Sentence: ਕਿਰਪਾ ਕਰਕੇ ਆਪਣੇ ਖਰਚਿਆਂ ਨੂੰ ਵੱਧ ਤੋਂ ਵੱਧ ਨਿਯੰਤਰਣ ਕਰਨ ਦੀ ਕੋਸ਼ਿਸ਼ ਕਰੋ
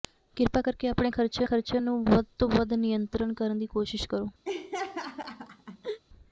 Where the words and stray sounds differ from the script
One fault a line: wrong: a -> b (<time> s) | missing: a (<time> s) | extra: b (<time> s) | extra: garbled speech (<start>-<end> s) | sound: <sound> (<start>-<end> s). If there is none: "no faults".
extra: ਖਰਚਿਆਂ (1.4 s)
sound: laugh (4.4-6.0 s)